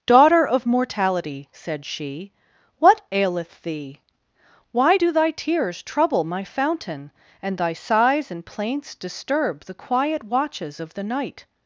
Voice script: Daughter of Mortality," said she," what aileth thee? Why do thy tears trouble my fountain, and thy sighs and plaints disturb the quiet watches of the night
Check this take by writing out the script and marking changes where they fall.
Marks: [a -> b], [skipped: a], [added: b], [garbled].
Daughter of Mortality," said she," what aileth thee? Why do thy tears trouble my fountain, and thy sighs and plaints disturb the quiet watches of the night